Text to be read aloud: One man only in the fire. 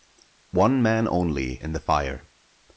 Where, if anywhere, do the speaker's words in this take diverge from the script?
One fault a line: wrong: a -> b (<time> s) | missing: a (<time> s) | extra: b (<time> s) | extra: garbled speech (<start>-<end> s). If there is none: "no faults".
no faults